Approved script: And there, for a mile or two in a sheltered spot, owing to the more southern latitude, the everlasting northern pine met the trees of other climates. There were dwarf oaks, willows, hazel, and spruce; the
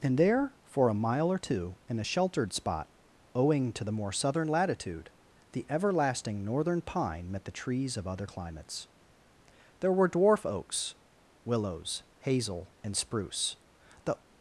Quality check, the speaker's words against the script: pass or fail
pass